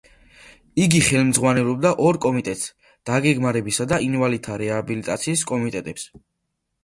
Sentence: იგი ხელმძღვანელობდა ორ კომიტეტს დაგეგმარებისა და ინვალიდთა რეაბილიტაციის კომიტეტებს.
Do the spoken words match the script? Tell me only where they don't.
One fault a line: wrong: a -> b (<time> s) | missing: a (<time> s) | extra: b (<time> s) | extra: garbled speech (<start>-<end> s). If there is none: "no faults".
no faults